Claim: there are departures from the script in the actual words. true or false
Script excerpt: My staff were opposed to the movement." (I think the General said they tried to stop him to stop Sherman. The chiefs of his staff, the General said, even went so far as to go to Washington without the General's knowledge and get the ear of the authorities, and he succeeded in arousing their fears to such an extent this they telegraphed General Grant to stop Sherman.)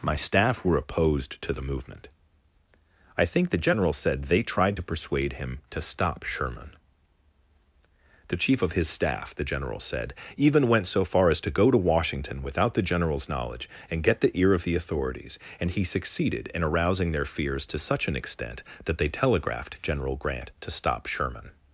true